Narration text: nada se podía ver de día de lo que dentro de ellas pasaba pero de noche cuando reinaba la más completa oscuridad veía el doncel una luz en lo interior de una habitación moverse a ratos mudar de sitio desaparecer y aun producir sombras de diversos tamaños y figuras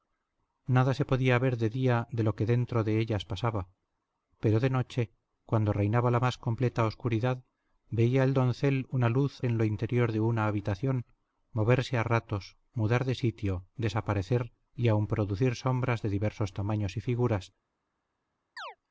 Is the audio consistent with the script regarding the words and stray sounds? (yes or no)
no